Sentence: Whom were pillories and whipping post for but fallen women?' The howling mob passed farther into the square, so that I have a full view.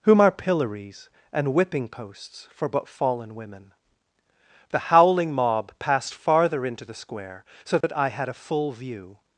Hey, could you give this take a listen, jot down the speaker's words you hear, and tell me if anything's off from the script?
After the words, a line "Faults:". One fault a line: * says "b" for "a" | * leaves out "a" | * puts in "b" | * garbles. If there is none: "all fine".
Whom are pillories and whipping posts for but fallen women?' The howling mob passed farther into the square, so that I had a full view.
Faults:
* says "are" for "were"
* says "posts" for "post"
* says "had" for "have"